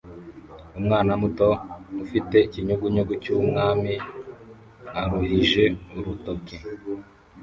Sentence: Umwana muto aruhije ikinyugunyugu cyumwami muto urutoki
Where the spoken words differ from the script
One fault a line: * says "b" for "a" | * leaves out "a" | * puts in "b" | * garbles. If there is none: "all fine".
* says "ufite" for "aruhije"
* says "aruhije" for "muto"